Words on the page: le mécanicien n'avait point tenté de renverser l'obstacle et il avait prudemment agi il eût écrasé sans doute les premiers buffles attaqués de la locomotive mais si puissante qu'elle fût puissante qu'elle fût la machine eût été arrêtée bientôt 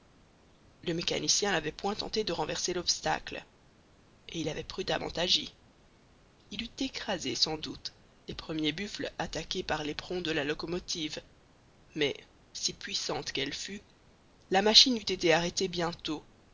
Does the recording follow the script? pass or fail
fail